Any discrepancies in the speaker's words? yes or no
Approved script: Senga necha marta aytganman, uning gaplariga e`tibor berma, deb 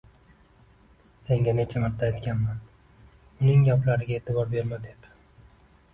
no